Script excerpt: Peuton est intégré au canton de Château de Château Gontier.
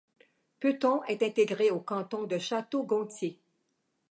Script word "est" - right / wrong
right